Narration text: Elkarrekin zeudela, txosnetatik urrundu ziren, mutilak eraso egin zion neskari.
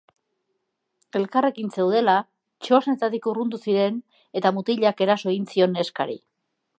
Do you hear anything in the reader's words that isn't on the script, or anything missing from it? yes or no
yes